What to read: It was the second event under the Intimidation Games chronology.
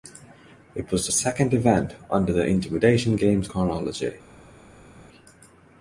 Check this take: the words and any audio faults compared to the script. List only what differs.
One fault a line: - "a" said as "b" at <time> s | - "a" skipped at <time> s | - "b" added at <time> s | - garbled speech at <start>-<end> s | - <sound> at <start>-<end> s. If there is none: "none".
none